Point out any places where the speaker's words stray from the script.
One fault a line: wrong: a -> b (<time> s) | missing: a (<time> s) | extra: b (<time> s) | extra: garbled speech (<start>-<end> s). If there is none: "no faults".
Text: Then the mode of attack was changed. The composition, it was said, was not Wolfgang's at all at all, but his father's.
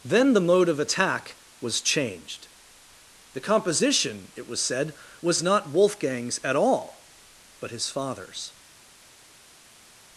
missing: at all (7.1 s)